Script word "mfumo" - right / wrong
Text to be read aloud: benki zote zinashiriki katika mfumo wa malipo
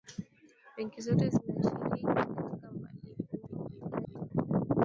wrong